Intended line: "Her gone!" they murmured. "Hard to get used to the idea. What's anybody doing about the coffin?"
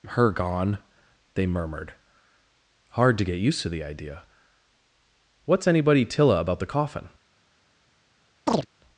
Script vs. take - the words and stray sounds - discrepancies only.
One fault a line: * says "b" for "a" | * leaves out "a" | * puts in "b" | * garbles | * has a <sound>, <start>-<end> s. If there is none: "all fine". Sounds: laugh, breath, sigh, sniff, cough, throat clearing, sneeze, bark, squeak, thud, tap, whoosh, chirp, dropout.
* says "tilla" for "doing"
* has a chirp, 8.5-8.7 s